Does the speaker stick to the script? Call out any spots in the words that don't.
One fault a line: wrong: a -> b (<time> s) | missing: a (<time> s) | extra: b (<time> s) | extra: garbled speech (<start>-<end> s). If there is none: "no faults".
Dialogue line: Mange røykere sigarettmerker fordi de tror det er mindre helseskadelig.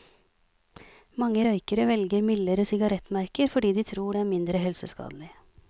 extra: velger mildere (1.9 s)